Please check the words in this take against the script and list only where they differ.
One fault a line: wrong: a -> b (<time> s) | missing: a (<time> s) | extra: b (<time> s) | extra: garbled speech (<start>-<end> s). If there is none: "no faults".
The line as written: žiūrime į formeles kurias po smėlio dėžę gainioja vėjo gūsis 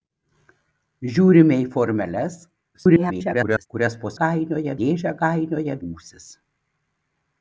extra: garbled speech (2.7-3.7 s)
wrong: smėlio -> gainioja (4.2 s)
missing: vėjo (5.8 s)